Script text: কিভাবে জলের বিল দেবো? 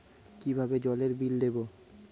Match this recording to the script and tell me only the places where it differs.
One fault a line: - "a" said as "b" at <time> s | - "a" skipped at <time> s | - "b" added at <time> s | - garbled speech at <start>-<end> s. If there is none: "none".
none